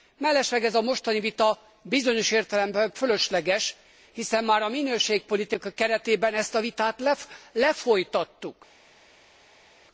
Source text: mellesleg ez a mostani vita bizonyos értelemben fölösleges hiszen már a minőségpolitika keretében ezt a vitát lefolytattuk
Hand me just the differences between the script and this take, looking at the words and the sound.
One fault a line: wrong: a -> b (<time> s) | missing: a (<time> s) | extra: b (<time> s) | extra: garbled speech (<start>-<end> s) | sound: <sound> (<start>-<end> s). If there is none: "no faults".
no faults